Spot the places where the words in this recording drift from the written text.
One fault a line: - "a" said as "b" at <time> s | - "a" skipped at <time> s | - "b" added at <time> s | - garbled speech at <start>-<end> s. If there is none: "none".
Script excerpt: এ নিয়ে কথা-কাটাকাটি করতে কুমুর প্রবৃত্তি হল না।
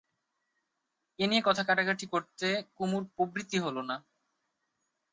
none